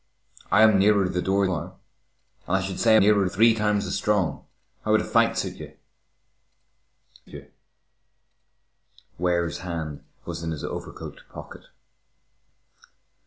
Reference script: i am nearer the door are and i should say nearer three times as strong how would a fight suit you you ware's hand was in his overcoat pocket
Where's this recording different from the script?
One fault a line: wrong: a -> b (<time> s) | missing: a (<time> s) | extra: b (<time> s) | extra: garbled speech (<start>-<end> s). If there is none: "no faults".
no faults